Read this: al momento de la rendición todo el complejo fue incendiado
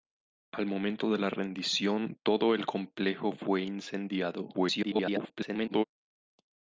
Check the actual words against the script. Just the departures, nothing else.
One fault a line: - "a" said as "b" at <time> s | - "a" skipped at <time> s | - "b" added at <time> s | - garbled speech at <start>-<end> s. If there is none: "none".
- garbled speech at 4.5-5.8 s